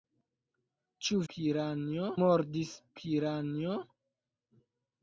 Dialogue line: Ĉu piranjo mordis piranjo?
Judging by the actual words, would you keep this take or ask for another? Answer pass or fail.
pass